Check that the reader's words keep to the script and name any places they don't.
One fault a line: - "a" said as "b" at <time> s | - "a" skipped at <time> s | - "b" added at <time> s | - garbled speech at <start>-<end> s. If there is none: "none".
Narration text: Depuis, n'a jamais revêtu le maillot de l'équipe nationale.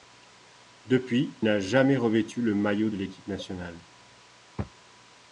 none